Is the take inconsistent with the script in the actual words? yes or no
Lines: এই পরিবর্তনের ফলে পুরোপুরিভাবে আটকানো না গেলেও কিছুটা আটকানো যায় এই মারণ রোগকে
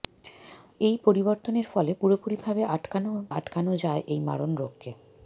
yes